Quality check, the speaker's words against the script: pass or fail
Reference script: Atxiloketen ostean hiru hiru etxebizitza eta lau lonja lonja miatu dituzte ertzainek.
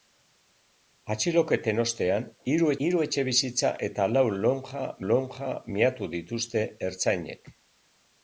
pass